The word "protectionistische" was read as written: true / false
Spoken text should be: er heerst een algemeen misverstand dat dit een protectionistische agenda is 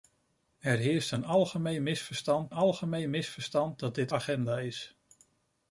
false